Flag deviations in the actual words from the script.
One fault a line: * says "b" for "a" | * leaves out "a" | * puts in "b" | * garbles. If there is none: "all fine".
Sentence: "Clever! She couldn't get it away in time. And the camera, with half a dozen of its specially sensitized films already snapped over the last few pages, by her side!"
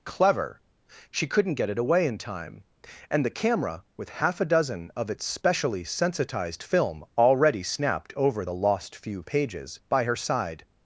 * says "film" for "films"
* says "lost" for "last"